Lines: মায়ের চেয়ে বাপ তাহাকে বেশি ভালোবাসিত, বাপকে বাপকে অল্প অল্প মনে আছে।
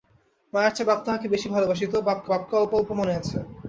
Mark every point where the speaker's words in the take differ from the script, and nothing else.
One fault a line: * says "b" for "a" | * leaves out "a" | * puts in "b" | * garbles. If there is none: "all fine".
all fine